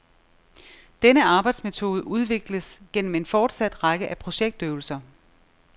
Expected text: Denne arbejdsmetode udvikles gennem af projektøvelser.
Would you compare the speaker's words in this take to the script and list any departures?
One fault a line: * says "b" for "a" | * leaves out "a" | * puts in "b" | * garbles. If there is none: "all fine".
* puts in "en fortsat række"